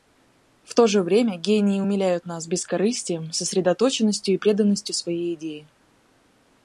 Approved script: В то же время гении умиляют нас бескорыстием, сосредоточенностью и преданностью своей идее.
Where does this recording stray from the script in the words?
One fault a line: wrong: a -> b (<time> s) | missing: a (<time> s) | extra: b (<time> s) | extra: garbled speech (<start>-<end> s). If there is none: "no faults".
no faults